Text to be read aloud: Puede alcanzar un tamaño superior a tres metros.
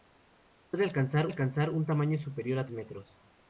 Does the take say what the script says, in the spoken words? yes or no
no